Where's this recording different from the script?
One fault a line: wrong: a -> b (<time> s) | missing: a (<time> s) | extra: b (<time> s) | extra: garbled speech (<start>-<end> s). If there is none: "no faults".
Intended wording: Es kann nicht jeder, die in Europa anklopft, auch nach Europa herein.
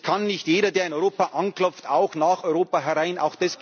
wrong: die -> der (0.7 s)